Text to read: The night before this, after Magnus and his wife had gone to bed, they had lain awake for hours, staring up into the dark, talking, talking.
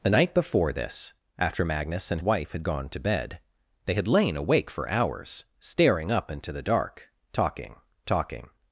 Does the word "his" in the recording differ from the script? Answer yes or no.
yes